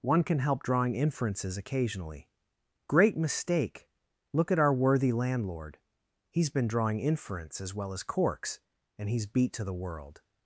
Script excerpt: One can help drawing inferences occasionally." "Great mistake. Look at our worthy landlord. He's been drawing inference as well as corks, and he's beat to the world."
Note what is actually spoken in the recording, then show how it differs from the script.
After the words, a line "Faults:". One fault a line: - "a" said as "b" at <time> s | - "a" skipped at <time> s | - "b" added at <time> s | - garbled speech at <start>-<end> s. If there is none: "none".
One can help drawing inferences occasionally." "Great mistake. Look at our worthy landlord. He's been drawing inference as well as corks, and he's beat to the world."
Faults:
none